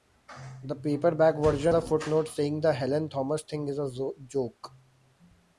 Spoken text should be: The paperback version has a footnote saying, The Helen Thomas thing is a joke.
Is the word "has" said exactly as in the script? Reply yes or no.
no